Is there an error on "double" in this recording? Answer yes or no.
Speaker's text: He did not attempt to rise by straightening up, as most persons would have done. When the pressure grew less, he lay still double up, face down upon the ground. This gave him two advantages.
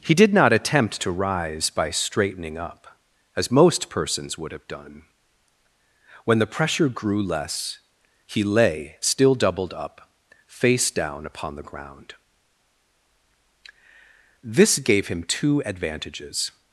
yes